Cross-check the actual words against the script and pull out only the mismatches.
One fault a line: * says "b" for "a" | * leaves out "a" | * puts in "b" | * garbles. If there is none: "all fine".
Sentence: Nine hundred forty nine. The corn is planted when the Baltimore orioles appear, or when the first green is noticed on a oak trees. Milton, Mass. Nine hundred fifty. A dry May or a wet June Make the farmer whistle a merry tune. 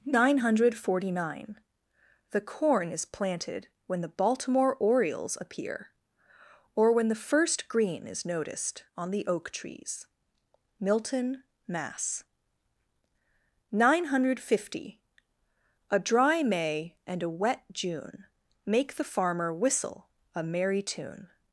* says "the" for "a"
* says "and" for "or"